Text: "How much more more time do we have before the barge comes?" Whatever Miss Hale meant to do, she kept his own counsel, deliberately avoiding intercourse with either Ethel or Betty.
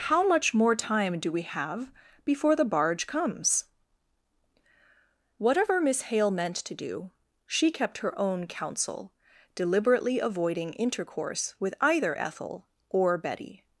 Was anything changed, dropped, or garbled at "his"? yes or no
yes